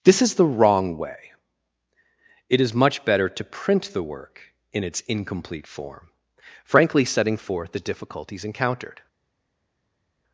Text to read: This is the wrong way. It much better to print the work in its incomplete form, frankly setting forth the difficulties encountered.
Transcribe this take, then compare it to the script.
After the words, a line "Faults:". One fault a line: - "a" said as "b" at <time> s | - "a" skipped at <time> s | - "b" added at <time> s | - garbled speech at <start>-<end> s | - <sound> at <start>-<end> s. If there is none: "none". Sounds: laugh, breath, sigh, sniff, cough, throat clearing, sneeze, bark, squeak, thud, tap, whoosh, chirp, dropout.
This is the wrong way. It is much better to print the work in its incomplete form, frankly setting forth the difficulties encountered.
Faults:
- "is" added at 2.6 s